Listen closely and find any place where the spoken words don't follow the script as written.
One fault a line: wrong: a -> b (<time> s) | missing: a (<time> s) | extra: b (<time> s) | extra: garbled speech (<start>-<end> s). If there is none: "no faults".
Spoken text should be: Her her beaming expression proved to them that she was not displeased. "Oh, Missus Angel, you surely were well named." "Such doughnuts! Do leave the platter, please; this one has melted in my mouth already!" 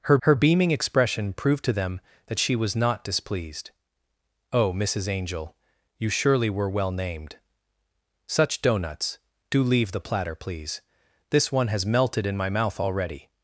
no faults